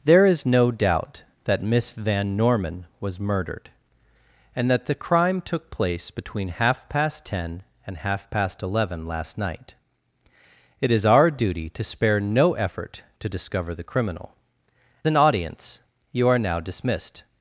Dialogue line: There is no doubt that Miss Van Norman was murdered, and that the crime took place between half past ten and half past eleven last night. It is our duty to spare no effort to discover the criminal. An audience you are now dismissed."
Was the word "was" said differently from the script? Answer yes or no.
no